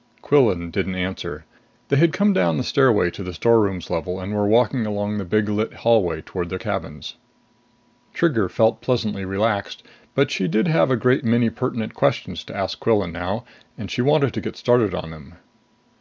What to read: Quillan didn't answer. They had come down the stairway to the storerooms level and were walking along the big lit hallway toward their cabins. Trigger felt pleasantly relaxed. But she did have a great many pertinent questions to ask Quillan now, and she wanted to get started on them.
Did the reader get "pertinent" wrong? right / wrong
right